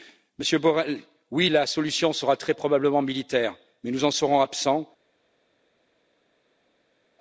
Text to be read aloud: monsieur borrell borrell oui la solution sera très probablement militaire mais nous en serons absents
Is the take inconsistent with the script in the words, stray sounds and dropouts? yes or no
yes